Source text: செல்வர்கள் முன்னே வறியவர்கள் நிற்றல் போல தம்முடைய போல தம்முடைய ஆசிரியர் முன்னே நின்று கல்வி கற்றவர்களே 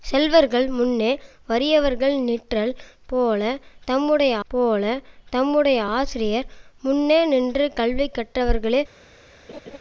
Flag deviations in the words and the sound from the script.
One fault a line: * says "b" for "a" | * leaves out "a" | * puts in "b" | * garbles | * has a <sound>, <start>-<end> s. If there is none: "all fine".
* has a laugh, 9.5-9.8 s